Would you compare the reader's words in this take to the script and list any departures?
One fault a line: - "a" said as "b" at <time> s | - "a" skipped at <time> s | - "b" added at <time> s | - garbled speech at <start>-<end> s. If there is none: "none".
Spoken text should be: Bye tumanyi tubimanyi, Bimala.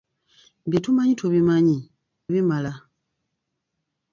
none